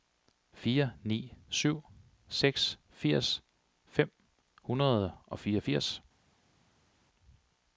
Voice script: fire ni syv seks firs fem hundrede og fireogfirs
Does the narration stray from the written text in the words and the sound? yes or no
no